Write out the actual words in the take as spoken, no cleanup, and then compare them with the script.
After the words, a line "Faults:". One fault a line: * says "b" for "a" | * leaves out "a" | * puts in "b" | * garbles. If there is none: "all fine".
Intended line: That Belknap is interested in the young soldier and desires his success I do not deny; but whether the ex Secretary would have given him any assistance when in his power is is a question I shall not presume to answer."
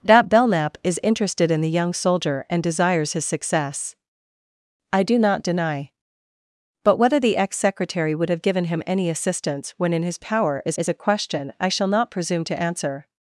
That Belknap is interested in the young soldier and desires his success I do not deny; but whether the ex Secretary would have given him any assistance when in his power is is a question I shall not presume to answer."
Faults:
all fine